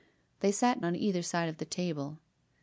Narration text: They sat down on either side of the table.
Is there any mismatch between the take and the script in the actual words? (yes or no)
yes